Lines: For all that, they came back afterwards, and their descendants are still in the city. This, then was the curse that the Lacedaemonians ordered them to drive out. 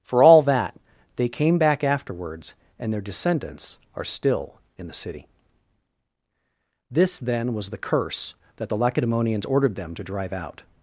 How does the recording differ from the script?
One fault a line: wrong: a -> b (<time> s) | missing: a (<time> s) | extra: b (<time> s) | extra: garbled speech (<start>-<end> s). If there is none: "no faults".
no faults